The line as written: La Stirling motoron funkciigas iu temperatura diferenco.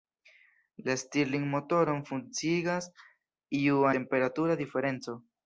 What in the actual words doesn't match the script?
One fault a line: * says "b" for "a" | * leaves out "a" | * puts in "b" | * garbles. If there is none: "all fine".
all fine